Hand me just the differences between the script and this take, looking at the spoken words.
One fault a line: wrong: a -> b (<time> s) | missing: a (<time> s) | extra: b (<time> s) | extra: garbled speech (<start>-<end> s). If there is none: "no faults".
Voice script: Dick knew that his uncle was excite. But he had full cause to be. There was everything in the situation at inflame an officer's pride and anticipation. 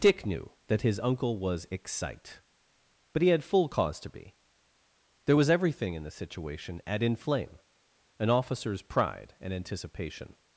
no faults